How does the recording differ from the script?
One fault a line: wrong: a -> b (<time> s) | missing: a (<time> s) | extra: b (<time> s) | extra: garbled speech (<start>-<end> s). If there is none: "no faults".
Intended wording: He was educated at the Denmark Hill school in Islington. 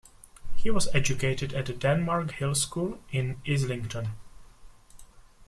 no faults